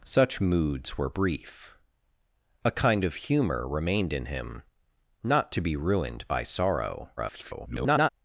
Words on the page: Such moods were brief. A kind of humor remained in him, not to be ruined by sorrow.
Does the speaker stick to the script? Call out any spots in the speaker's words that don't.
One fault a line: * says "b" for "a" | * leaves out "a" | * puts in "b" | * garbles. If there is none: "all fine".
* garbles